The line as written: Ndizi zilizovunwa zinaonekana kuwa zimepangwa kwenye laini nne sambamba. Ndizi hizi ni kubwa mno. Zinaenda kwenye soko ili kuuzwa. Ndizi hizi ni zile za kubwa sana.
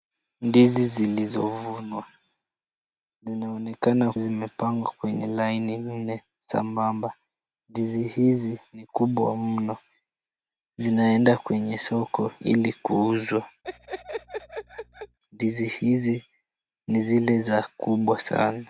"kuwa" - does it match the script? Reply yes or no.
no